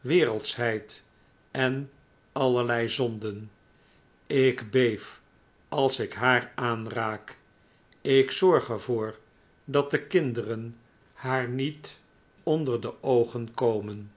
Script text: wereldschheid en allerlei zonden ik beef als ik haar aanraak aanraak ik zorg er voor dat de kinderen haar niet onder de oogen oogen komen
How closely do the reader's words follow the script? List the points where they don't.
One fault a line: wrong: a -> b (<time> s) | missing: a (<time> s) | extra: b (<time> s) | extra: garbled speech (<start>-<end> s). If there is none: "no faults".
missing: aanraak (7.4 s)
missing: oogen (13.5 s)